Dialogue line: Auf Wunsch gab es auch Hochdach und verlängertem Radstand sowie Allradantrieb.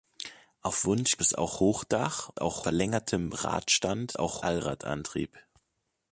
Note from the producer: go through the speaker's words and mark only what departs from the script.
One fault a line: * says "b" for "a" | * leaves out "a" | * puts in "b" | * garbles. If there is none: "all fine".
* leaves out "gab"
* says "auch" for "und"
* says "auch" for "sowie"